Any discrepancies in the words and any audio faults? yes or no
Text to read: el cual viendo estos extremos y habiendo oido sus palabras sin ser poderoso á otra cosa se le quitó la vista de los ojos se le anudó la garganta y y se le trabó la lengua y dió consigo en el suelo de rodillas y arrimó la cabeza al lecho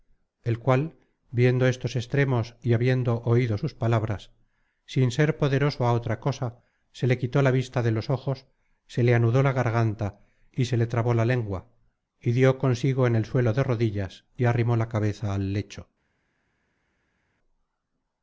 yes